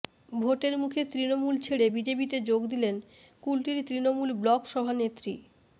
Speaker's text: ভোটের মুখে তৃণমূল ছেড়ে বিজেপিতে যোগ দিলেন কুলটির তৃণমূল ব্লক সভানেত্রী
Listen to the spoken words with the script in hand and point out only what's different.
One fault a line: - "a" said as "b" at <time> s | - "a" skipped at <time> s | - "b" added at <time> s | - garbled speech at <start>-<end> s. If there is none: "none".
none